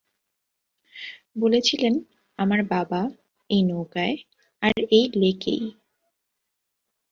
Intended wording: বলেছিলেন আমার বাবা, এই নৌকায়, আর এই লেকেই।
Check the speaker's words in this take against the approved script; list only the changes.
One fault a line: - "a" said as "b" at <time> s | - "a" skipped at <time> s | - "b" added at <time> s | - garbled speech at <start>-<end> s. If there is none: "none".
none